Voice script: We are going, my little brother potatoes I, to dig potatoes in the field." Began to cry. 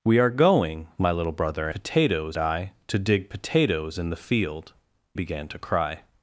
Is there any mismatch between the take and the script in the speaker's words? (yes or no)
no